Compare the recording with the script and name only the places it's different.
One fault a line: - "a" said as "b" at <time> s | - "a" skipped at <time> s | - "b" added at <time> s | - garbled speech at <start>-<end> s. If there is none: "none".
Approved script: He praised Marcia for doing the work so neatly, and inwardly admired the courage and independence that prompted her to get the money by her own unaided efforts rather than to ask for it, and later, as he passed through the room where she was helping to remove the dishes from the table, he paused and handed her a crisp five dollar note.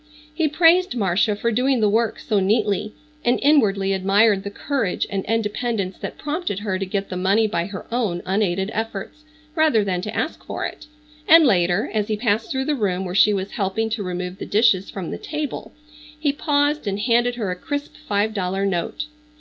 none